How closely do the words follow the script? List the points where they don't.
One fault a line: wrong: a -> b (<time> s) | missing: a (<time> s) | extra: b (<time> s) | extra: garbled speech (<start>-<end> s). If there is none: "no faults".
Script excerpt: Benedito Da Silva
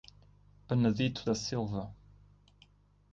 no faults